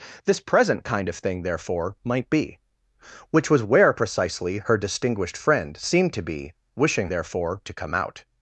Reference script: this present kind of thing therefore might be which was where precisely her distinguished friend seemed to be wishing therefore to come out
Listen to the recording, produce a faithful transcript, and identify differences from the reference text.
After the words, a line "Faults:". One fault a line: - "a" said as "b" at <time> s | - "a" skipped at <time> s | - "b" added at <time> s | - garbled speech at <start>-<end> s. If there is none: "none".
this present kind of thing therefore might be which was where precisely her distinguished friend seemed to be wishing therefore to come out
Faults:
none